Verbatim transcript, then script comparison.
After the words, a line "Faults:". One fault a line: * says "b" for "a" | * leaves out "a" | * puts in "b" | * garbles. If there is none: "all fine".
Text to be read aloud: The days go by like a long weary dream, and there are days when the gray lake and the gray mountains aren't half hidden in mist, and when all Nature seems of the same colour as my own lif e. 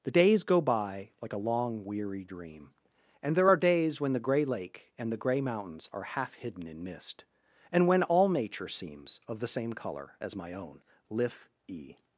The days go by like a long weary dream, and there are days when the gray lake and the gray mountains are half hidden in mist, and when all Nature seems of the same colour as my own lif e.
Faults:
* says "are" for "aren't"